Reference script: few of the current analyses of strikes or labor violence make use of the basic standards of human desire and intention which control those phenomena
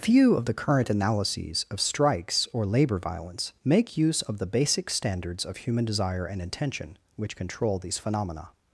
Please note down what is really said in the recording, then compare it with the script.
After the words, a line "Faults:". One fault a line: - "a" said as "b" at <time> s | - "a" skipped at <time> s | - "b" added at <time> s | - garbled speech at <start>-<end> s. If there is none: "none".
few of the current analyses of strikes or labor violence make use of the basic standards of human desire and intention which control these phenomena
Faults:
- "those" said as "these" at 7.8 s